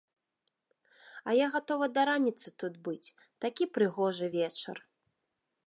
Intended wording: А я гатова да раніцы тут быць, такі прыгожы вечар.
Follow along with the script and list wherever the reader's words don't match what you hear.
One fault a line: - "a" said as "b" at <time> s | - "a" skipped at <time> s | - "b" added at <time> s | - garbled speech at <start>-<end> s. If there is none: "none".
none